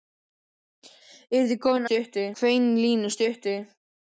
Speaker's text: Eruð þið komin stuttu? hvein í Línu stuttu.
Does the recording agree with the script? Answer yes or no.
yes